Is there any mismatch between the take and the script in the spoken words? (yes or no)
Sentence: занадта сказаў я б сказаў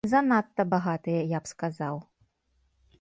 yes